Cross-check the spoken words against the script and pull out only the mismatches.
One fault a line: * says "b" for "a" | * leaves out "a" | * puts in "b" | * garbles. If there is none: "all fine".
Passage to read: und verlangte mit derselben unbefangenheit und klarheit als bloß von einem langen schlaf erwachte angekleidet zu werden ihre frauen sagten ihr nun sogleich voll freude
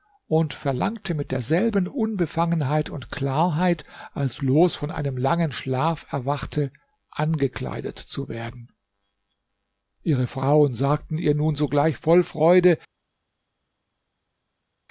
all fine